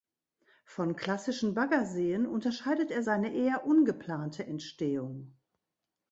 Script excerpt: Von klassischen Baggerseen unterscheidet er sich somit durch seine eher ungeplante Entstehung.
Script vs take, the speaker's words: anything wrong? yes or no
yes